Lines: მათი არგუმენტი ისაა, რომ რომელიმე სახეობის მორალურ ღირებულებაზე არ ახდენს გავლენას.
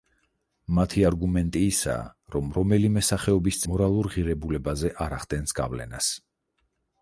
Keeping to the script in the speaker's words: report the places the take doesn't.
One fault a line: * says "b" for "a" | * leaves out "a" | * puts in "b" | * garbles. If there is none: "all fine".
all fine